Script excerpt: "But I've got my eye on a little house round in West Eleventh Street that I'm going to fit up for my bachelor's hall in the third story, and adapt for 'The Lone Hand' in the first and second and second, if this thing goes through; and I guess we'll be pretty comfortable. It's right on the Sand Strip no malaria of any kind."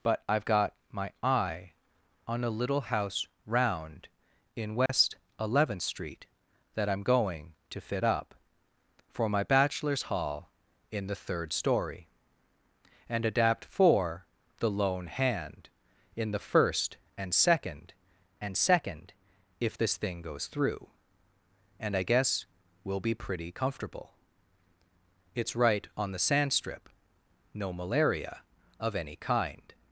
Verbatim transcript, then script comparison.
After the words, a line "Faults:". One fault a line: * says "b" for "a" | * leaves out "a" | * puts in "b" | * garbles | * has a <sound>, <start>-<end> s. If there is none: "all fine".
"But I've got my eye on a little house round in West Eleventh Street that I'm going to fit up for my bachelor's hall in the third story, and adapt for 'The Lone Hand' in the first and second and second, if this thing goes through; and I guess we'll be pretty comfortable. It's right on the Sand Strip no malaria of any kind."
Faults:
* has a dropout, 4.9-4.9 s